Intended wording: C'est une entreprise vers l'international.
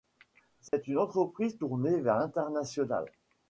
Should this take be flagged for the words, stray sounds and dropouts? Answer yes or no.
yes